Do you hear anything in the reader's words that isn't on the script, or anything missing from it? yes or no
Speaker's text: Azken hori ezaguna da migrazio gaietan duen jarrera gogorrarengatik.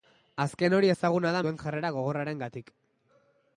yes